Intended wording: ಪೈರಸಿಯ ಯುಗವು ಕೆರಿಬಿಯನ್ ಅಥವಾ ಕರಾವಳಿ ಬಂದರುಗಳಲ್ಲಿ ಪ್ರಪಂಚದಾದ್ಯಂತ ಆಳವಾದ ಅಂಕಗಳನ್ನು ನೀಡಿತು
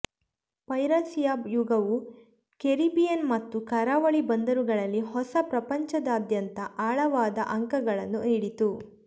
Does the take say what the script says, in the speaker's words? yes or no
no